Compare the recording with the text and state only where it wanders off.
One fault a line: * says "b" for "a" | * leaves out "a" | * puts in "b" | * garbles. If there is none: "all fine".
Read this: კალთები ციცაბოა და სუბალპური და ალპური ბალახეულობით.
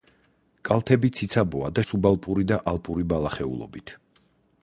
all fine